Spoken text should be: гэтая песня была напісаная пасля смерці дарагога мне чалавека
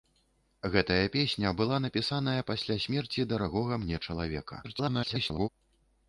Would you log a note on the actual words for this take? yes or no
yes